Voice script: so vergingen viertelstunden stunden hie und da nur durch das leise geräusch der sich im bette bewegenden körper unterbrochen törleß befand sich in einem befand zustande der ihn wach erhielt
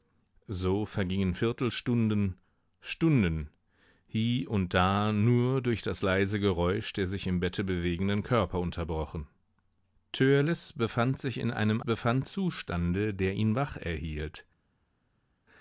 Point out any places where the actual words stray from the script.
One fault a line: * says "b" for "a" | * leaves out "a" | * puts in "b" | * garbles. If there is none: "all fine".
all fine